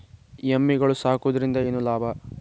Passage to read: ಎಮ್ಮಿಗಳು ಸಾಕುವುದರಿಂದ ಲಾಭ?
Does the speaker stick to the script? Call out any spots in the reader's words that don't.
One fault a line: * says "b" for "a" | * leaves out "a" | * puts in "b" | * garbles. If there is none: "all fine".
* puts in "ಏನು"